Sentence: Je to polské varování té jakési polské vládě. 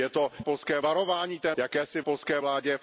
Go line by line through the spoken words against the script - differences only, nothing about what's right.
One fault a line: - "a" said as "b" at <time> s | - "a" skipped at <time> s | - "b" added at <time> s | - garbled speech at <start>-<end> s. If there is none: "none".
none